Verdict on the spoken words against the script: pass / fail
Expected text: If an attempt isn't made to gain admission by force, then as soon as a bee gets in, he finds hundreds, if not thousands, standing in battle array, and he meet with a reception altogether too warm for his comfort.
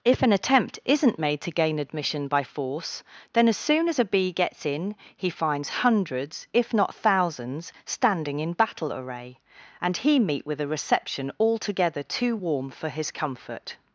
pass